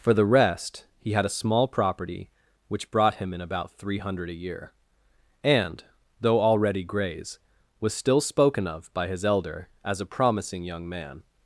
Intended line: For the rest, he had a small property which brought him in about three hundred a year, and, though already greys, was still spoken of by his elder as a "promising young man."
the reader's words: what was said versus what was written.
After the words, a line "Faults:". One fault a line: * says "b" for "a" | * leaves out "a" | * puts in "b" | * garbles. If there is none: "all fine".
For the rest, he had a small property which brought him in about three hundred a year, and, though already greys, was still spoken of by his elder as a "promising young man."
Faults:
all fine